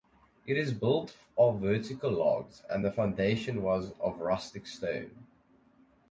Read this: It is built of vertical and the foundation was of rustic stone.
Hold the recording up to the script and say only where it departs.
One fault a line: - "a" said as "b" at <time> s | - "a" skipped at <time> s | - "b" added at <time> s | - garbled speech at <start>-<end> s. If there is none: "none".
- "logs" added at 2.1 s